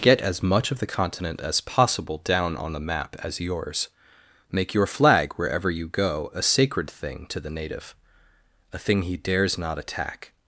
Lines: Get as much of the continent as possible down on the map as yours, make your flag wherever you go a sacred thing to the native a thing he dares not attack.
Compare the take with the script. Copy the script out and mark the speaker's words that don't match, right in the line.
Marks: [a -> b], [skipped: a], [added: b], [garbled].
Get as much of the continent as possible down on the map as yours, make your flag wherever you go a sacred thing to the native a thing he dares not attack.